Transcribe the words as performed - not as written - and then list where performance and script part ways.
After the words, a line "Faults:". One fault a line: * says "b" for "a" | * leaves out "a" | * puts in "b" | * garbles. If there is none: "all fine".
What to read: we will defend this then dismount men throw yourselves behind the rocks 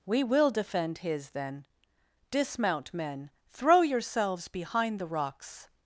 we will defend his then dismount men throw yourselves behind the rocks
Faults:
* says "his" for "this"